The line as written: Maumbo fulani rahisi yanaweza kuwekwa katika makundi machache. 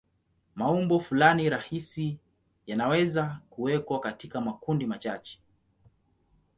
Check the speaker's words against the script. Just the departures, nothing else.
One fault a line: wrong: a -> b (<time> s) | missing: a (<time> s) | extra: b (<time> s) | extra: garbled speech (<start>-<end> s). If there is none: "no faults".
no faults